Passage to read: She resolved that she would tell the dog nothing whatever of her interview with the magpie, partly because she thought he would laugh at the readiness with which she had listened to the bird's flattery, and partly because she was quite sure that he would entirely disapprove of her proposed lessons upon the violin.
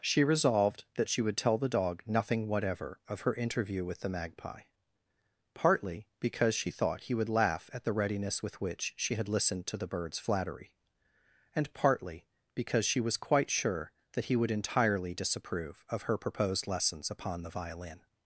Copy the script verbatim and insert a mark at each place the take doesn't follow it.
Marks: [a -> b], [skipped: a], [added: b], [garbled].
She resolved that she would tell the dog nothing whatever of her interview with the magpie, partly because she thought he would laugh at the readiness with which she had listened to the bird's flattery, and partly because she was quite sure that he would entirely disapprove of her proposed lessons upon the violin.